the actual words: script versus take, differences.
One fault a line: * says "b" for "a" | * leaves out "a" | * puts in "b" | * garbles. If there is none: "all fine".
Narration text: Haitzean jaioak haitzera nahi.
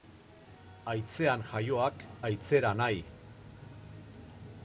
all fine